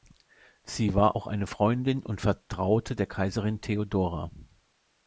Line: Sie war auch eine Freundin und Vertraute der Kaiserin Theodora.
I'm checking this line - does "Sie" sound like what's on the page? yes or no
yes